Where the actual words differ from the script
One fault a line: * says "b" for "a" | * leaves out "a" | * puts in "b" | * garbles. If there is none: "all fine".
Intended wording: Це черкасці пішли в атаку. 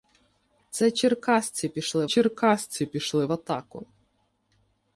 * puts in "черкасці пішли"